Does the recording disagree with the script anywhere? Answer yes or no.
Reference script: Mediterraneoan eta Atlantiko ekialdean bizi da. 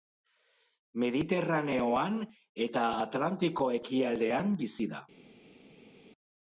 no